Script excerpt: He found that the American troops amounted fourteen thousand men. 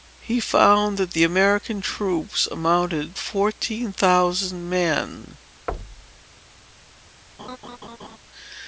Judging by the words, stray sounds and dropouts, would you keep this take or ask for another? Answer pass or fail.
fail